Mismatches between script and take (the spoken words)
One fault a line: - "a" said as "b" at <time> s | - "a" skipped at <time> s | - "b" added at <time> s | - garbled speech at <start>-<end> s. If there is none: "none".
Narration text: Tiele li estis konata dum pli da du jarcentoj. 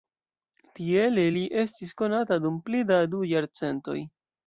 none